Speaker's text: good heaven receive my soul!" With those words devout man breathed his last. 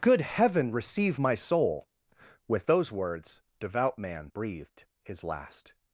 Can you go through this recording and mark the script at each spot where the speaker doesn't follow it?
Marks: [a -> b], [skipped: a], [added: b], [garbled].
good heaven receive my soul!" With those words devout man breathed his last.